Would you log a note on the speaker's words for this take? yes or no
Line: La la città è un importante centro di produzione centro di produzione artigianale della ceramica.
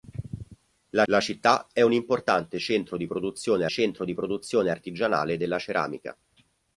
no